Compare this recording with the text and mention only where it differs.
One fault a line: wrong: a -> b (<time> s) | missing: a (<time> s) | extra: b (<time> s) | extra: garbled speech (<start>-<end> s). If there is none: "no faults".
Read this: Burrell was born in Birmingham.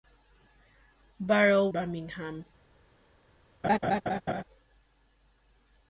missing: was born in (1.7 s)